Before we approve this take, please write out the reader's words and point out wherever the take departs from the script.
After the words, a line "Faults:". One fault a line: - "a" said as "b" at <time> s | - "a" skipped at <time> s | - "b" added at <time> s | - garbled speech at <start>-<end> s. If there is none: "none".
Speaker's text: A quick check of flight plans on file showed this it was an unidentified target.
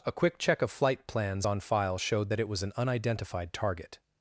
A quick check of flight plans on file showed that it was an unidentified target.
Faults:
- "this" said as "that" at 2.3 s